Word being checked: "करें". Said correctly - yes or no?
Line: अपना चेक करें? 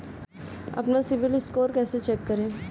yes